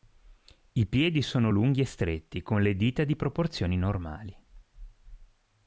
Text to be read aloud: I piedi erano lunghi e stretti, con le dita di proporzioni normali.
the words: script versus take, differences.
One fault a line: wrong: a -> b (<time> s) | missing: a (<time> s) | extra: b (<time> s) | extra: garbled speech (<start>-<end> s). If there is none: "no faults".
wrong: erano -> sono (1.2 s)